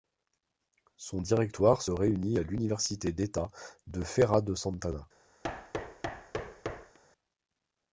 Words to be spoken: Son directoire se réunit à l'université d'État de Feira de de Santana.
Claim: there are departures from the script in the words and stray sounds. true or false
true